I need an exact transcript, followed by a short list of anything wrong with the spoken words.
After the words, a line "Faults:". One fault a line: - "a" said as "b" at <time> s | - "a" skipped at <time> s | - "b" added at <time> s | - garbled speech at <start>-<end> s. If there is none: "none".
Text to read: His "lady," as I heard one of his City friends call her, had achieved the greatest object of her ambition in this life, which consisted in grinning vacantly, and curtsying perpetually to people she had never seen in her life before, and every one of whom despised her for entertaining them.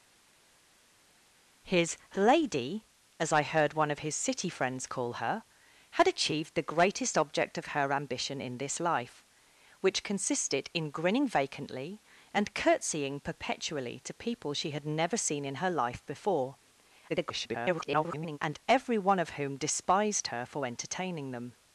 His "lady," as I heard one of his City friends call her, had achieved the greatest object of her ambition in this life, which consisted in grinning vacantly, and curtsying perpetually to people she had never seen in her life before, [garbled] and every one of whom despised her for entertaining them.
Faults:
- garbled speech at 17.1-18.4 s